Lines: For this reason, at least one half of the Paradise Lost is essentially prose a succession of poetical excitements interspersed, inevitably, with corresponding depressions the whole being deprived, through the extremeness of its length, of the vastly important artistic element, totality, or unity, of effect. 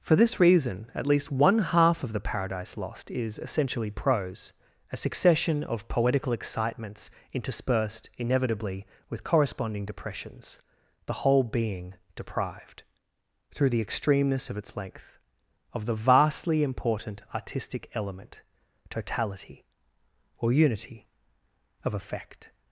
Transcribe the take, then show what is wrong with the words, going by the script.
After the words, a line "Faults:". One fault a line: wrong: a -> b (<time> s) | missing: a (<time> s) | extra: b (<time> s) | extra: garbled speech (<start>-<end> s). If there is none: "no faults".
For this reason, at least one half of the Paradise Lost is essentially prose a succession of poetical excitements interspersed, inevitably, with corresponding depressions the whole being deprived, through the extremeness of its length, of the vastly important artistic element, totality, or unity, of effect.
Faults:
no faults